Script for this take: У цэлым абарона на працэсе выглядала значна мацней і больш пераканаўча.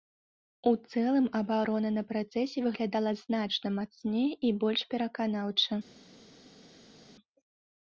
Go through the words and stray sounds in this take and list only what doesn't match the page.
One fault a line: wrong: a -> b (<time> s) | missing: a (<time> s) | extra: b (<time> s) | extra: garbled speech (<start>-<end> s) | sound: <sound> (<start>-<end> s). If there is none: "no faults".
no faults